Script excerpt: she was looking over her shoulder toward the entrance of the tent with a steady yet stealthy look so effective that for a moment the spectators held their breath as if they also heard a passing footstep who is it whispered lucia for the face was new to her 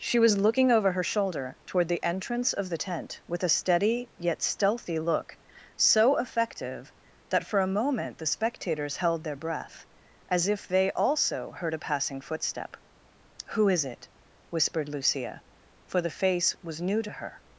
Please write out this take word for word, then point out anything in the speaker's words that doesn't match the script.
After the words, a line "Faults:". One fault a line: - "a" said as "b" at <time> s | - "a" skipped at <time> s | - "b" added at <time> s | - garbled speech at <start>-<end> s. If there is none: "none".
she was looking over her shoulder toward the entrance of the tent with a steady yet stealthy look so effective that for a moment the spectators held their breath as if they also heard a passing footstep who is it whispered lucia for the face was new to her
Faults:
none